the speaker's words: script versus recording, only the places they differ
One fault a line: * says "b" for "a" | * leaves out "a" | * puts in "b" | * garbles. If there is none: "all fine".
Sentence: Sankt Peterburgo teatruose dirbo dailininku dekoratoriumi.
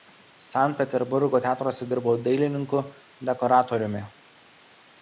all fine